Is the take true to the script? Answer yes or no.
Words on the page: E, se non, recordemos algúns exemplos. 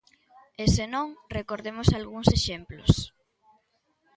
yes